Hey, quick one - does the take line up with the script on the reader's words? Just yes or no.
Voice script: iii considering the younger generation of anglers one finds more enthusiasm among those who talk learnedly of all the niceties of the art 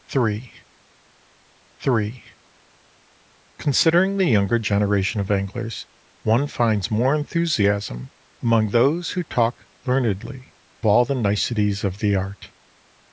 no